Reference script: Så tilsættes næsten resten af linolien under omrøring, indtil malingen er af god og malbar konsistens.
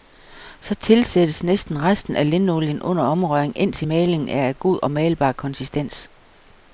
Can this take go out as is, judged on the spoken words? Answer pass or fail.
pass